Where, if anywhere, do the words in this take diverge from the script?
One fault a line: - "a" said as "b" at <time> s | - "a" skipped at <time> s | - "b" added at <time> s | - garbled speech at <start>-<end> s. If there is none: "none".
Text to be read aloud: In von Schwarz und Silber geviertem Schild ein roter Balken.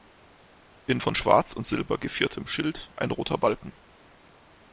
none